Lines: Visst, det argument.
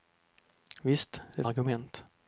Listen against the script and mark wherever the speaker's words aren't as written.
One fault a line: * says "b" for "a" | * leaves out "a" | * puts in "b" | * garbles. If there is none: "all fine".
all fine